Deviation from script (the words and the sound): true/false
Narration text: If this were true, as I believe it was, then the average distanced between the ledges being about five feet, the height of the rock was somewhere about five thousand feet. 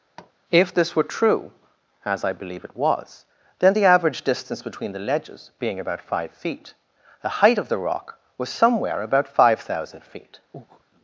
true